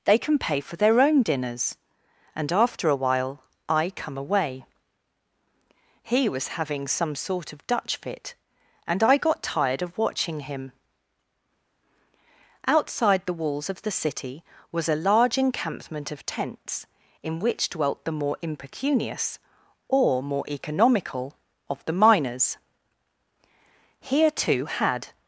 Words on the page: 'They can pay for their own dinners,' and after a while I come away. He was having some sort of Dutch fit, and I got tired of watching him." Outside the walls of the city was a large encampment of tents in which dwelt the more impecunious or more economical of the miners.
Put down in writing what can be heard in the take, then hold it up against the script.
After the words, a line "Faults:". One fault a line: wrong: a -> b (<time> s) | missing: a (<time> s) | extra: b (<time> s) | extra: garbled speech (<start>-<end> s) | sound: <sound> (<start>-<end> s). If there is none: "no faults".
'They can pay for their own dinners,' and after a while I come away. He was having some sort of Dutch fit, and I got tired of watching him." Outside the walls of the city was a large encampment of tents in which dwelt the more impecunious or more economical of the miners. Here too had
Faults:
extra: Here too had (24.0 s)